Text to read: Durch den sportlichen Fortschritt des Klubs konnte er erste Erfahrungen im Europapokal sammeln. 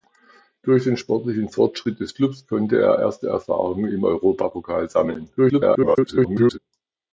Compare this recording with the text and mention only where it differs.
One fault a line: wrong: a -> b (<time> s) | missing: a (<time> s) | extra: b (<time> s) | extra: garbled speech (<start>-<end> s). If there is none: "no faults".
extra: garbled speech (5.4-6.6 s)